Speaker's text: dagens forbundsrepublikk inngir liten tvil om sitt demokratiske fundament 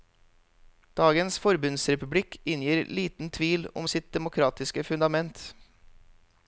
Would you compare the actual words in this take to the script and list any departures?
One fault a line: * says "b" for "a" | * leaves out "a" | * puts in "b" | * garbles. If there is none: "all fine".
all fine